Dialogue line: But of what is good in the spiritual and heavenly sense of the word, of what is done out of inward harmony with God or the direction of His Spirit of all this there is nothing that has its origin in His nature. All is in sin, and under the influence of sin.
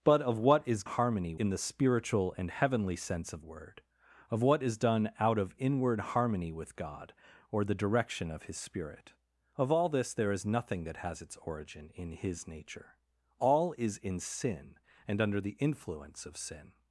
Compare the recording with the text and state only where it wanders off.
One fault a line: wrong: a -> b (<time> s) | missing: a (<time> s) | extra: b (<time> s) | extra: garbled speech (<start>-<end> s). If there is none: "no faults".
wrong: good -> harmony (0.8 s)
missing: the (3.4 s)